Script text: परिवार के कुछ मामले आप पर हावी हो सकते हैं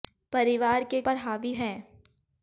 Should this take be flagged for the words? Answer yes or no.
yes